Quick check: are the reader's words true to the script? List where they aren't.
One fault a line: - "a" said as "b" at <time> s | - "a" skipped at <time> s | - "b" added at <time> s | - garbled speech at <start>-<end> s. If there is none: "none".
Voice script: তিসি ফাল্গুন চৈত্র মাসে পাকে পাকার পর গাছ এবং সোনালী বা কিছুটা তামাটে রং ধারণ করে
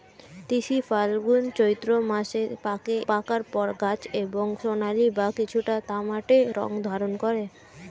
none